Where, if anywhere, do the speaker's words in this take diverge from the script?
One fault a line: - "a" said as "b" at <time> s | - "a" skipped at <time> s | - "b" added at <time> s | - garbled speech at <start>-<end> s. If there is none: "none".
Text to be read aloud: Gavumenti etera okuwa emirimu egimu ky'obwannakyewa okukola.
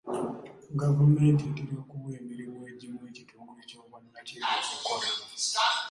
- "ekitongole" added at 3.1 s